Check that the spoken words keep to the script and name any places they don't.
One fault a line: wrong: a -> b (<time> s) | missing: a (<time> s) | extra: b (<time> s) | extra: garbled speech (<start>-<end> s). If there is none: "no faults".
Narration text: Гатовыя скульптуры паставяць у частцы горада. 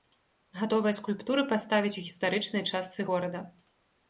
extra: гістарычнай (2.1 s)